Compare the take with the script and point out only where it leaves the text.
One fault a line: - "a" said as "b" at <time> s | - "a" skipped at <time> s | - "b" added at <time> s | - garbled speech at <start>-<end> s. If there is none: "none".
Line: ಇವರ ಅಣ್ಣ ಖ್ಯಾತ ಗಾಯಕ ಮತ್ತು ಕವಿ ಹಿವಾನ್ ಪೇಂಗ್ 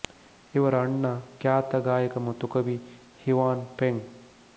none